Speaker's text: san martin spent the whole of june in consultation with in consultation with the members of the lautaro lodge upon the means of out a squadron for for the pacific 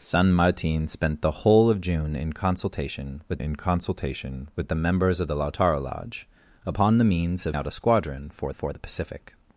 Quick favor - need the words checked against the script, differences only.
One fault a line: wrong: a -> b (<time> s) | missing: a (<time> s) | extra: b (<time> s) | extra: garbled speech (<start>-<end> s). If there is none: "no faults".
no faults